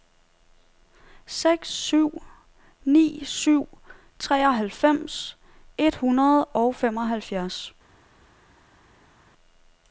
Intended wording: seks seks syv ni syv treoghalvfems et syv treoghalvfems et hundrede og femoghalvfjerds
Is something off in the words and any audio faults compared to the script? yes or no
yes